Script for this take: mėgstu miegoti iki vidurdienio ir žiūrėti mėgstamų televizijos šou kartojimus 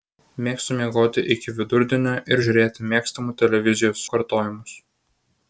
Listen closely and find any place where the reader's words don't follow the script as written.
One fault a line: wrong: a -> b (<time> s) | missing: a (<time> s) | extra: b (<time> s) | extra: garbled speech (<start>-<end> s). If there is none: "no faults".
missing: šou (4.1 s)